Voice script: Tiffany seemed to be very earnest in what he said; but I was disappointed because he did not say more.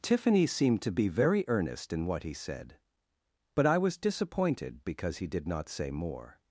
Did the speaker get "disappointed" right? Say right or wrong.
right